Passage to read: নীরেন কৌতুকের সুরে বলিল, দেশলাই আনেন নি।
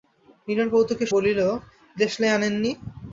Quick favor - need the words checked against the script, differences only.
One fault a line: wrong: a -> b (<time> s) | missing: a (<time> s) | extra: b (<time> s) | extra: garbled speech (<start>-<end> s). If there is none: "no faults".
missing: সুরে (1.1 s)